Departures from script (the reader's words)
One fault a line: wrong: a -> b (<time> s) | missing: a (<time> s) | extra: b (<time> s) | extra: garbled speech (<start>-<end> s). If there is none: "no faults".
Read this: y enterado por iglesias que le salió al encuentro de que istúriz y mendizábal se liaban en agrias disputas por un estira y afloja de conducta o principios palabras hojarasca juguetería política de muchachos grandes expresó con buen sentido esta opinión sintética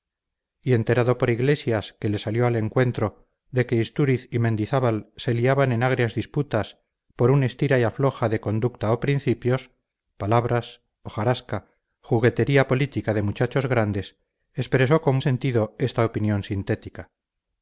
missing: buen (15.2 s)